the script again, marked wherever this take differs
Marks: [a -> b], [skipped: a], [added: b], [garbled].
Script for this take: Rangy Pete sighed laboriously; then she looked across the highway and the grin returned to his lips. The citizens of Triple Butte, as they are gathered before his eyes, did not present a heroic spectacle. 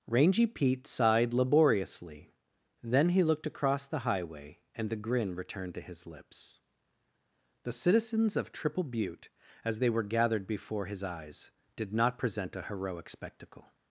Rangy Pete sighed laboriously; then [she -> he] looked across the highway and the grin returned to his lips. The citizens of Triple Butte, as they [are -> were] gathered before his eyes, did not present a heroic spectacle.